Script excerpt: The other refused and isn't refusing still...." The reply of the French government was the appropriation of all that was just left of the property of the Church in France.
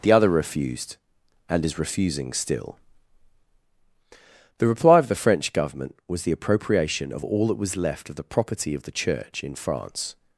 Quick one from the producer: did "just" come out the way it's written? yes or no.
no